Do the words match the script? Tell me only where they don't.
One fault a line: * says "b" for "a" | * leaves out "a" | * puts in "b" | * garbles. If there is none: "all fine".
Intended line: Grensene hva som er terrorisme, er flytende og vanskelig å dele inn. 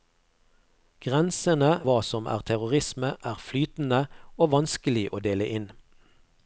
all fine